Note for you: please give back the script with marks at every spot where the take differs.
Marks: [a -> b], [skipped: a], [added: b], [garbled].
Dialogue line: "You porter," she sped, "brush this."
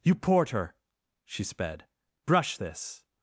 "You porter," she sped, "brush this."